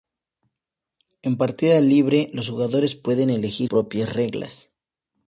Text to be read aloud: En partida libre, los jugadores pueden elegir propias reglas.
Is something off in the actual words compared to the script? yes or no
no